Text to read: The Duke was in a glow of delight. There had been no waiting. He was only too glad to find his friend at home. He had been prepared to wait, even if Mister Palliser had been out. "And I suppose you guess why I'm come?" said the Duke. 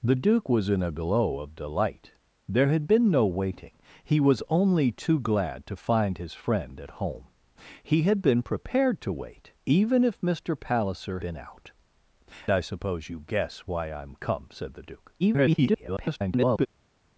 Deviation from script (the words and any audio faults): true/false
true